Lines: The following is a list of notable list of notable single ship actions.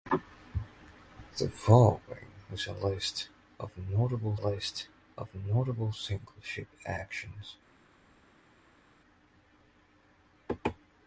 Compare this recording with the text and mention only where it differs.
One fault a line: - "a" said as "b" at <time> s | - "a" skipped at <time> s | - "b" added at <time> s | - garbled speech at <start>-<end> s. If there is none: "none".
none